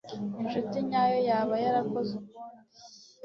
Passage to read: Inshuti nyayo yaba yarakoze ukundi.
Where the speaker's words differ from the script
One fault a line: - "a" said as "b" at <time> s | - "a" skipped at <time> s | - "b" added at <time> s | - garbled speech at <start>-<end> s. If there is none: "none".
none